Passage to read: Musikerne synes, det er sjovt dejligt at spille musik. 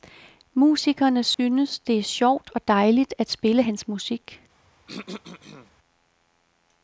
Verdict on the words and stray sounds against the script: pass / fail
fail